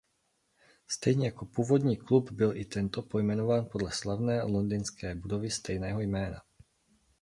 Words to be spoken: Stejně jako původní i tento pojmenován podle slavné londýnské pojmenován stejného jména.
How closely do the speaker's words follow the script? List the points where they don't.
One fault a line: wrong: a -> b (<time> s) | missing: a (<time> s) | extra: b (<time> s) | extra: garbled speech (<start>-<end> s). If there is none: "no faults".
extra: klub byl (2.0 s)
wrong: pojmenován -> budovy (5.2 s)